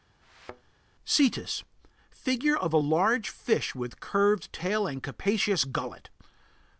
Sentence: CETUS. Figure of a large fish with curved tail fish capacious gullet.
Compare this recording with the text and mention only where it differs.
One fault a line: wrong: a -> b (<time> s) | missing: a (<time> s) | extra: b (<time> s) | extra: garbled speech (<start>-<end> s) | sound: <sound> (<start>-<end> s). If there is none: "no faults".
sound: thud (0.2-0.7 s)
wrong: fish -> and (4.9 s)